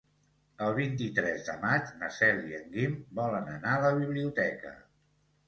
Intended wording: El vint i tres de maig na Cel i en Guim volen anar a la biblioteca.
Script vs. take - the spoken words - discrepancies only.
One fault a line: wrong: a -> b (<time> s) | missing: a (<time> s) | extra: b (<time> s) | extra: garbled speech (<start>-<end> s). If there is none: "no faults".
no faults